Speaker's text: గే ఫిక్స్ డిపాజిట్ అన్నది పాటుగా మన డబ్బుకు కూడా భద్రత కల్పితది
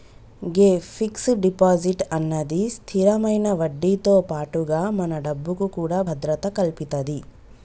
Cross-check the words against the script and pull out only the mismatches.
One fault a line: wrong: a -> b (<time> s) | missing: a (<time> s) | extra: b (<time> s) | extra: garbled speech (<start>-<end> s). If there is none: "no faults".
extra: స్థిరమైన వడ్డీతో (2.7 s)